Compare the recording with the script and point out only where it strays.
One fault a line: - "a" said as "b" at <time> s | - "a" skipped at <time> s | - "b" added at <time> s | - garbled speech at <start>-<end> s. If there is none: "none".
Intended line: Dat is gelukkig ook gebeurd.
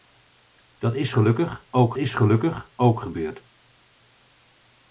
- "is gelukkig ook" added at 2.0 s